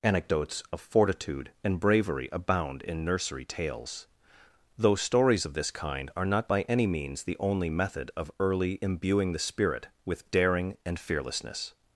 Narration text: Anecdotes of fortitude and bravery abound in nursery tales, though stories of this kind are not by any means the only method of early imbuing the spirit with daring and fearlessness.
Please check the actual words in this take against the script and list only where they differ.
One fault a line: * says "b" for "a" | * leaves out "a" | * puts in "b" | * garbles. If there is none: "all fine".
all fine